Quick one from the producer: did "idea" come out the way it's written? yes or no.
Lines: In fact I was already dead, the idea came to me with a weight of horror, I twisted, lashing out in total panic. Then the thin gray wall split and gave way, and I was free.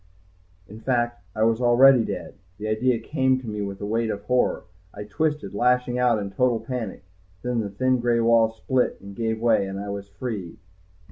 yes